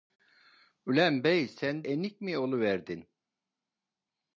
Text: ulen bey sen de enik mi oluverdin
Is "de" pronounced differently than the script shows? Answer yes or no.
yes